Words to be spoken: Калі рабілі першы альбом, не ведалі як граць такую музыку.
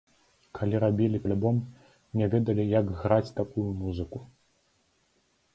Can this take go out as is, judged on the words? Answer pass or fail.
fail